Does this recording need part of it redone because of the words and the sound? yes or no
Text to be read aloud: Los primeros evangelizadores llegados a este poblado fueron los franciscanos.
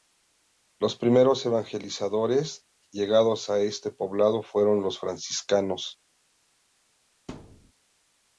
yes